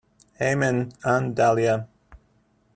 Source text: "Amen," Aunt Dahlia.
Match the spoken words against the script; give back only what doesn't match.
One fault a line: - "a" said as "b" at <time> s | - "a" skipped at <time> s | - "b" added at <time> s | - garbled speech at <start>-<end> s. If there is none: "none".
none